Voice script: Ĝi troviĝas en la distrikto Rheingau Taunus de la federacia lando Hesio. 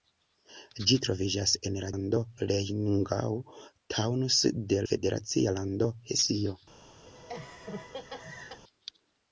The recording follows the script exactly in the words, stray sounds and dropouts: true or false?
false